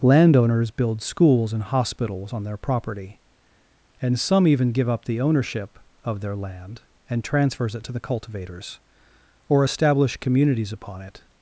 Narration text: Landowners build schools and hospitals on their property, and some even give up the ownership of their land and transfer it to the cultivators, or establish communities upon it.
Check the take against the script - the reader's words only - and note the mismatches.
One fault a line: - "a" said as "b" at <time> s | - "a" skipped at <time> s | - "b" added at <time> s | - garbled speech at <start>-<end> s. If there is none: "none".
- "transfer" said as "transfers" at 7.2 s